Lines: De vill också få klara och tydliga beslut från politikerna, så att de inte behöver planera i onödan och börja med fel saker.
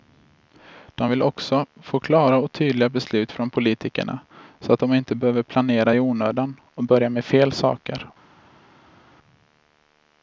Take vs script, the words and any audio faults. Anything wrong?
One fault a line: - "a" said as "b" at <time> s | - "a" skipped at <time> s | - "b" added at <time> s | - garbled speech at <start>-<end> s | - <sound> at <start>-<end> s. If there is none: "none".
none